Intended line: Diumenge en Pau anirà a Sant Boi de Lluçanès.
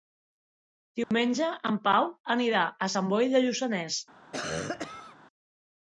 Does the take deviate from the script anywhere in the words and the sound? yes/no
yes